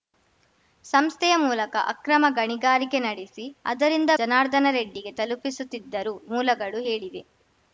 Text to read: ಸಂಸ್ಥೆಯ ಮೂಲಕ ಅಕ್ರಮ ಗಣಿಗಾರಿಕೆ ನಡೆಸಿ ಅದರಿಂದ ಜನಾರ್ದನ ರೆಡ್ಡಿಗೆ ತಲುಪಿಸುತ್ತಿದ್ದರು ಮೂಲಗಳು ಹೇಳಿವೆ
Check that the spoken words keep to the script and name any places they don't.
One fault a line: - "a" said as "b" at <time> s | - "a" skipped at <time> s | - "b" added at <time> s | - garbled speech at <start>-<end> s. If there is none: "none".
none